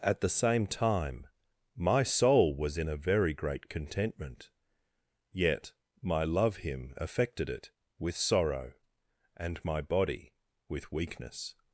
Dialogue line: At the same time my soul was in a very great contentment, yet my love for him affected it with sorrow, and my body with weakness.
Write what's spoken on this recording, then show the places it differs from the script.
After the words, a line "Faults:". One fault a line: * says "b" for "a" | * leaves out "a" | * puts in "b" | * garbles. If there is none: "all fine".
At the same time my soul was in a very great contentment, yet my love him affected it with sorrow, and my body with weakness.
Faults:
* leaves out "for"